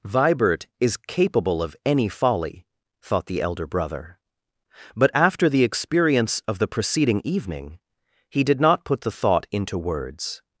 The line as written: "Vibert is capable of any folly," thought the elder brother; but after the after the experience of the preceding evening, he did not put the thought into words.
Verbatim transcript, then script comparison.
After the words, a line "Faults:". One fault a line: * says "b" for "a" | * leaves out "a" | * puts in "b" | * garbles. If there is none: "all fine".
"Vibert is capable of any folly," thought the elder brother; but after the experience of the preceding evening, he did not put the thought into words.
Faults:
* leaves out "after the"